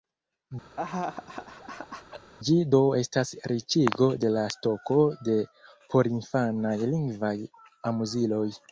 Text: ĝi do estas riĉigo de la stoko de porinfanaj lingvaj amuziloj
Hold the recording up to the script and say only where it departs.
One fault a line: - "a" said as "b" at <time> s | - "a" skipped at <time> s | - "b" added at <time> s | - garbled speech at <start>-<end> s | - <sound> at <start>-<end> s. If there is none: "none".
- laugh at 0.8-2.3 s